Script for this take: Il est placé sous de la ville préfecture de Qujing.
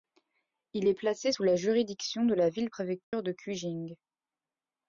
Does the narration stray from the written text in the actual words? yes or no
yes